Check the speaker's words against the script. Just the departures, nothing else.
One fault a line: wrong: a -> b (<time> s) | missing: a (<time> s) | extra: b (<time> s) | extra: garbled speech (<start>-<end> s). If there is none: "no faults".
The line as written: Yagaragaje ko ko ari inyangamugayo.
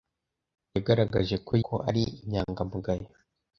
no faults